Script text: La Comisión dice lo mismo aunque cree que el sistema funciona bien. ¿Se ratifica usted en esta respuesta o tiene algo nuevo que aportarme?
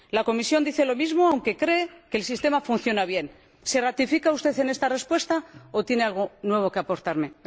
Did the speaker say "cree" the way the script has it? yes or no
yes